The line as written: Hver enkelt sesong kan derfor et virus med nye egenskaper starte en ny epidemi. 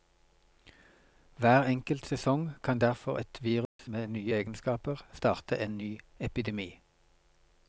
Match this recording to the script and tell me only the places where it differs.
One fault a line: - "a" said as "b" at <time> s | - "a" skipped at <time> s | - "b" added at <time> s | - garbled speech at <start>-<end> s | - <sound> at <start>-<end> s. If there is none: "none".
- dropout at 3.7-3.8 s